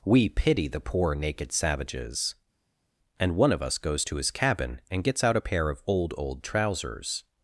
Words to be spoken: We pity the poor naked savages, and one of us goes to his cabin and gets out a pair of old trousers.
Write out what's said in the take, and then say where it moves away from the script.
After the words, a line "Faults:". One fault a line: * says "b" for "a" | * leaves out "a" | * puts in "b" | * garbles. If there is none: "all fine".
We pity the poor naked savages, and one of us goes to his cabin and gets out a pair of old old trousers.
Faults:
* puts in "old"